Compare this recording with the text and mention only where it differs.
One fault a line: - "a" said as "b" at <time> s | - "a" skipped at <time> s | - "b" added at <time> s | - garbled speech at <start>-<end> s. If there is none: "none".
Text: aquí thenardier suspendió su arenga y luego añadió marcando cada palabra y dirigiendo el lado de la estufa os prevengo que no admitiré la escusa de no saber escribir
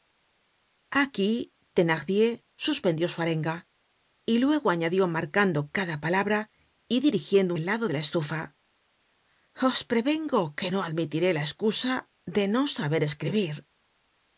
none